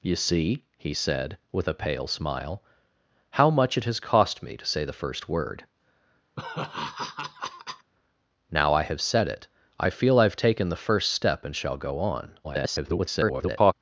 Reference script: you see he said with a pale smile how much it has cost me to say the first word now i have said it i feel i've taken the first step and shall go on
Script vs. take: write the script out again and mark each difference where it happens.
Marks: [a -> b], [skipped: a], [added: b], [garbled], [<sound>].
you see he said with a pale smile how much it has cost me to say the first word [laugh] now i have said it i feel i've taken the first step and shall go on [garbled]